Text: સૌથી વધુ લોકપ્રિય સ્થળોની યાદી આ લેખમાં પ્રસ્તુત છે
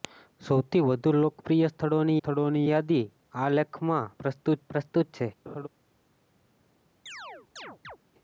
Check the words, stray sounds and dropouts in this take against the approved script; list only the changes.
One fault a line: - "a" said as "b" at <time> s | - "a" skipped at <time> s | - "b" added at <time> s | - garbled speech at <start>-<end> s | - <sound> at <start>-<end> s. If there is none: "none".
- "સ્થળોની" added at 2.2 s
- "પ્રસ્તુત" added at 4.7 s
- laugh at 5.5-5.7 s
- chirp at 7.1-8.0 s